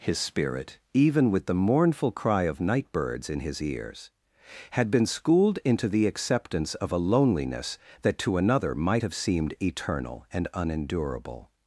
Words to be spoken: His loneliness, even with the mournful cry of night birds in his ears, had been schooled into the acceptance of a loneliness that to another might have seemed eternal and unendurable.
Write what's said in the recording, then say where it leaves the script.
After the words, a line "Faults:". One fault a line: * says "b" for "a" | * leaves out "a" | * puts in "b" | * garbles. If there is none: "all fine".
His spirit, even with the mournful cry of night birds in his ears, had been schooled into the acceptance of a loneliness that to another might have seemed eternal and unendurable.
Faults:
* says "spirit" for "loneliness"